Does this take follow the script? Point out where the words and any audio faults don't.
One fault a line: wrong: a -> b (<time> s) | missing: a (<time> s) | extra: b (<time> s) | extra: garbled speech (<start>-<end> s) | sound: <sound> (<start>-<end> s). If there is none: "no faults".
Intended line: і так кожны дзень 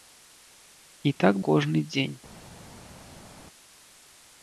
no faults